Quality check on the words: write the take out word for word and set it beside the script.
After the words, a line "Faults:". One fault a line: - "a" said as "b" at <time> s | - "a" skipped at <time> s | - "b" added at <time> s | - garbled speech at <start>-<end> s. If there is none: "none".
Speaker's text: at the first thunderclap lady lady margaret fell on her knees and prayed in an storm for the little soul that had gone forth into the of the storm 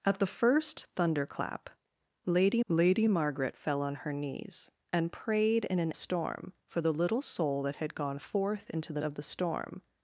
at the first thunderclap lady lady margaret fell on her knees and prayed in an storm for the little soul that had gone forth into the of the storm
Faults:
none